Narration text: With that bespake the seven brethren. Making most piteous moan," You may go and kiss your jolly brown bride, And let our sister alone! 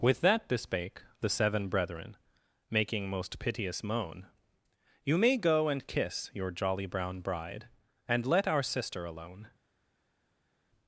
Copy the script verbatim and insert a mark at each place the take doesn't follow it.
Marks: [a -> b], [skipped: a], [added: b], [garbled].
With that bespake the seven brethren. Making most piteous moan," You may go and kiss your jolly brown bride, And let our sister alone!